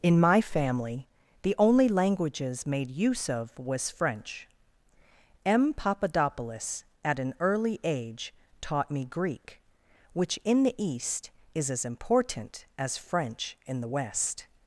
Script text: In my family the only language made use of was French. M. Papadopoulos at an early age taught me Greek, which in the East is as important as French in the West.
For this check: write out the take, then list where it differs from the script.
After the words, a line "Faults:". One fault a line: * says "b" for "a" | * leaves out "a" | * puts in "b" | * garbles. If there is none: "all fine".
In my family the only languages made use of was French. M. Papadopoulos at an early age taught me Greek, which in the East is as important as French in the West.
Faults:
* says "languages" for "language"